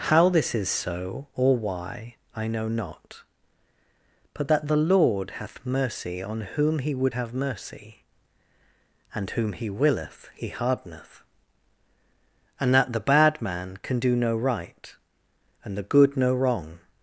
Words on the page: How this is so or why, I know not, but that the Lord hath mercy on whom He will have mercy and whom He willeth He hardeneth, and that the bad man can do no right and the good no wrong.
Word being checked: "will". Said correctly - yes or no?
no